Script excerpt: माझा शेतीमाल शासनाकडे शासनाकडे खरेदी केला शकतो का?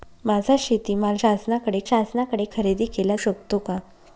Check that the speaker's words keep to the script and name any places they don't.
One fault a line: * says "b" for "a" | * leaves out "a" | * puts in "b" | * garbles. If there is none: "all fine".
all fine